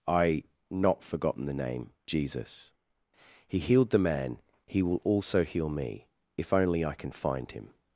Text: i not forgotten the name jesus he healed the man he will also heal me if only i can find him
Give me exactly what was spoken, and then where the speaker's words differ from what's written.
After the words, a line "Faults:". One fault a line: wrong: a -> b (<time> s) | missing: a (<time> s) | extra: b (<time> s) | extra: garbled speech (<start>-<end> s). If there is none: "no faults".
i not forgotten the name jesus he healed the man he will also heal me if only i can find him
Faults:
no faults